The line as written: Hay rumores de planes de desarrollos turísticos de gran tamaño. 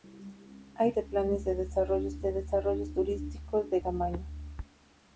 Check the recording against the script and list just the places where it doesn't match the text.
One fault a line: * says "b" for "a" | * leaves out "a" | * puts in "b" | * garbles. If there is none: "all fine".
* leaves out "rumores"
* puts in "de desarrollos"
* leaves out "gran"